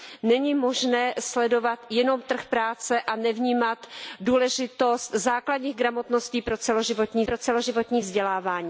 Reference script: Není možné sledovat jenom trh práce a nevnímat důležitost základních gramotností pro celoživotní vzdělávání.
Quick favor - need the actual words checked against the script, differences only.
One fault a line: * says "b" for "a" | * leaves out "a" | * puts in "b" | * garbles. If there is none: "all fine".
* puts in "pro celoživotní"